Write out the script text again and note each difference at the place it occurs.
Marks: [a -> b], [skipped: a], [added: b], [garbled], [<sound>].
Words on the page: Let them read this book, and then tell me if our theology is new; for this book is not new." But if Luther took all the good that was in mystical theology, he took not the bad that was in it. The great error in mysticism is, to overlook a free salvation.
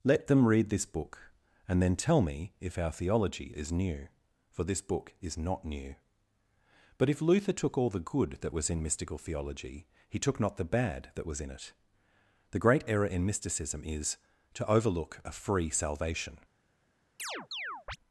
Let them read this book, and then tell me if our theology is new; for this book is not new." But if Luther took all the good that was in mystical theology, he took not the bad that was in it. The great error in mysticism is, to overlook a free salvation. [chirp]